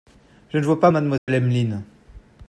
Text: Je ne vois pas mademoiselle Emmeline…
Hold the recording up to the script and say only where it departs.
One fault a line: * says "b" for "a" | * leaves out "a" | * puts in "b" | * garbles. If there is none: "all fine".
all fine